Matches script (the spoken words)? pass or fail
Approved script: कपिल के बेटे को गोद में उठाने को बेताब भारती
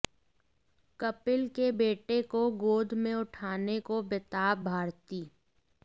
pass